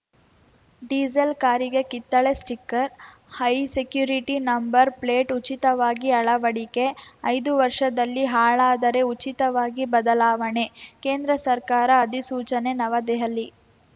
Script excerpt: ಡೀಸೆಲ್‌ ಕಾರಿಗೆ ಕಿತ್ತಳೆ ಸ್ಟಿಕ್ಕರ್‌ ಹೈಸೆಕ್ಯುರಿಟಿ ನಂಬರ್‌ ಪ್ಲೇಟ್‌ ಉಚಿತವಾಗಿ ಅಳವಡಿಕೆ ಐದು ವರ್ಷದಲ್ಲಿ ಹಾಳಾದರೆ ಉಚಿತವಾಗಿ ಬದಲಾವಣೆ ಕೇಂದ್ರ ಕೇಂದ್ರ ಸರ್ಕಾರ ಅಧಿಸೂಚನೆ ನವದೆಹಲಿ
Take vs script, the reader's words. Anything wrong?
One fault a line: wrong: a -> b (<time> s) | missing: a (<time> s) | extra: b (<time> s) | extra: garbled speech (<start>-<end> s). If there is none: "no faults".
missing: ಕೇಂದ್ರ (11.3 s)